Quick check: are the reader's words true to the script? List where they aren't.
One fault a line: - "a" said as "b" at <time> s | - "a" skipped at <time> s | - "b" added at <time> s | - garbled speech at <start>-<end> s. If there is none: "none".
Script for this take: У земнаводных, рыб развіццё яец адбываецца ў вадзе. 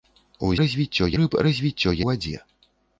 - "земнаводных" said as "развіццё" at 0.6 s
- "яец адбываецца ў" skipped at 1.9 s